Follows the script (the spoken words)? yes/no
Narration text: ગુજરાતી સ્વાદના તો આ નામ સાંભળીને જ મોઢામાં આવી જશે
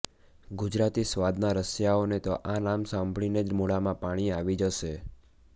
no